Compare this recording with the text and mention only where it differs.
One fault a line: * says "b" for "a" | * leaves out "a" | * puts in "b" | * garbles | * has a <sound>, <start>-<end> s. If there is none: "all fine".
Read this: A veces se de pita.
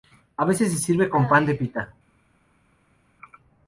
* puts in "sirve con pan"